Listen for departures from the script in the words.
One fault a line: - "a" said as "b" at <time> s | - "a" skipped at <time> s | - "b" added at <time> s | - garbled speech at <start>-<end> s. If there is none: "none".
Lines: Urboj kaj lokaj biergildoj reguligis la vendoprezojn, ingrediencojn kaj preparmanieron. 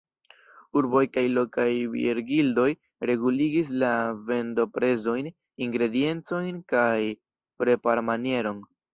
none